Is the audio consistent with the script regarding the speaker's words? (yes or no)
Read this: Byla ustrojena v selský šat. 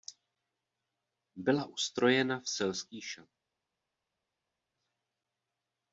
yes